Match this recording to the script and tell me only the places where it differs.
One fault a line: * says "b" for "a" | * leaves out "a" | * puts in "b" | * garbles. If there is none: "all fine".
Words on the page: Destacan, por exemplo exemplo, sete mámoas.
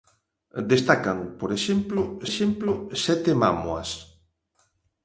all fine